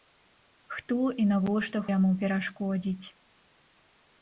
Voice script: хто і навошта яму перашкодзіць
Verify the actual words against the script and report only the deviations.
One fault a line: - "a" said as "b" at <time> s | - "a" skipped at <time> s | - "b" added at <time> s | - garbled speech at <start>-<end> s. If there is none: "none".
none